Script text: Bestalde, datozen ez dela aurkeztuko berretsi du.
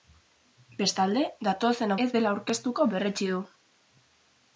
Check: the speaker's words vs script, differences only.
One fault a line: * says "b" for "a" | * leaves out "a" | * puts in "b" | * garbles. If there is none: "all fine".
all fine